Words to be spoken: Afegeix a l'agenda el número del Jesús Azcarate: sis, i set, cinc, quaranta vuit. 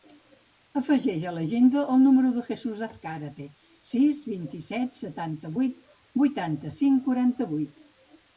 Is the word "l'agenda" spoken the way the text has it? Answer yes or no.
yes